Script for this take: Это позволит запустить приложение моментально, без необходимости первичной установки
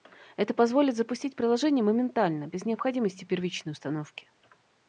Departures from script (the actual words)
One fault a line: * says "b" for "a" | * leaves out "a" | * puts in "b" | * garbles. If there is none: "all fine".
all fine